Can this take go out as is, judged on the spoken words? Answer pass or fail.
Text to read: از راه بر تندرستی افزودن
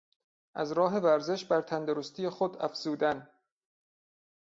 fail